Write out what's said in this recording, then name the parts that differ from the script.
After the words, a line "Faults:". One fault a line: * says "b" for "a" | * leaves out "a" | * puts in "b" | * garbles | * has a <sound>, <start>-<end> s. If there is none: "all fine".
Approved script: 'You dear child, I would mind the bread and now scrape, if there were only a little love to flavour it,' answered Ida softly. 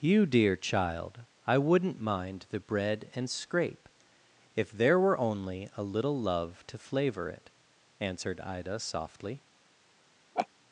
'You dear child, I wouldn't mind the bread and scrape, if there were only a little love to flavour it,' answered Ida softly.
Faults:
* says "wouldn't" for "would"
* leaves out "now"
* has a laugh, 10.3-10.5 s